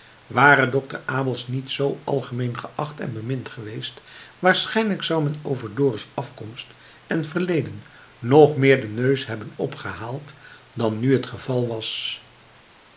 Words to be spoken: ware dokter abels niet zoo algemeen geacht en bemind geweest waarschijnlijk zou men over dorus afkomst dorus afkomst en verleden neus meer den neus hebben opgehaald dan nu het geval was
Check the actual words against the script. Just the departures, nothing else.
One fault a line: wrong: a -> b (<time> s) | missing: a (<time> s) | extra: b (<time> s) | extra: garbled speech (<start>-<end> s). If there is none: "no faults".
missing: dorus afkomst (6.7 s)
wrong: neus -> nog (8.2 s)